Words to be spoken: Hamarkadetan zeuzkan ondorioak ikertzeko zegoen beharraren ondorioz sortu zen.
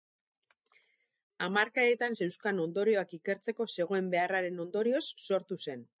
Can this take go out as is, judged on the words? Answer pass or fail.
pass